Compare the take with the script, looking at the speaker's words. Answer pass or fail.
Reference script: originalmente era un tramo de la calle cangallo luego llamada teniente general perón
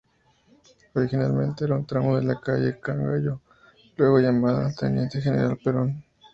pass